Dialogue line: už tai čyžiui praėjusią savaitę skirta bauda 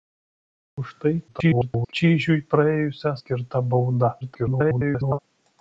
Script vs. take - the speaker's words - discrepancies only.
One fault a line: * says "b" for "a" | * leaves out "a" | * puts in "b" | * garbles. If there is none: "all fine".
* garbles
* leaves out "savaitę"
* garbles